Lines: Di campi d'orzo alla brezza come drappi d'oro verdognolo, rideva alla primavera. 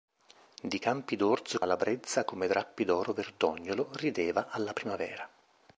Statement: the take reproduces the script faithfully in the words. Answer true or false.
true